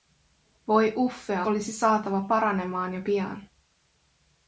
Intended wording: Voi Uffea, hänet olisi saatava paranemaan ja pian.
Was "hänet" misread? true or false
true